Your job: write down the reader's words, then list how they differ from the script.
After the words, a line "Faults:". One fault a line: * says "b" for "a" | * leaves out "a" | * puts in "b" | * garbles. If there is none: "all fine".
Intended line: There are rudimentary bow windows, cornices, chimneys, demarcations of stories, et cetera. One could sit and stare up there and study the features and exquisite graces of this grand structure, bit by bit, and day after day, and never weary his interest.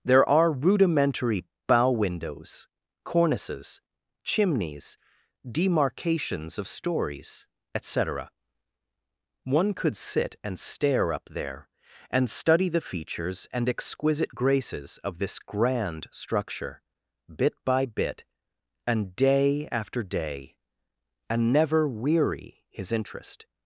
There are rudimentary bow windows, cornices, chimneys, demarcations of stories, et cetera. One could sit and stare up there and study the features and exquisite graces of this grand structure, bit by bit, and day after day, and never weary his interest.
Faults:
all fine